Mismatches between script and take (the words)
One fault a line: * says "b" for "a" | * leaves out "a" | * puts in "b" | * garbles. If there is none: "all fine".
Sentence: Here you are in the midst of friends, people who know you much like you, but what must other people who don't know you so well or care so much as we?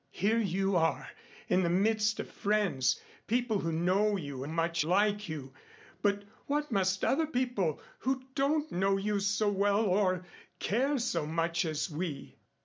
all fine